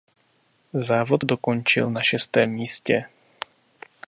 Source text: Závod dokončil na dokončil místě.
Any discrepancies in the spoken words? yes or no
yes